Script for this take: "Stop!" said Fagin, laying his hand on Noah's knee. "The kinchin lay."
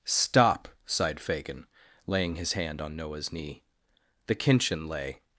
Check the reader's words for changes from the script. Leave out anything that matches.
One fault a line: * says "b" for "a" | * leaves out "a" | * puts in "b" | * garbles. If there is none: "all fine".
* says "sighed" for "said"